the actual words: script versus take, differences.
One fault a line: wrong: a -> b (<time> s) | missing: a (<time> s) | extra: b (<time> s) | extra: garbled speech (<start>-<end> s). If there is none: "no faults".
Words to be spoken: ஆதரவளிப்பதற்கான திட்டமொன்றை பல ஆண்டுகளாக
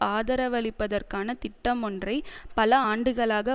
no faults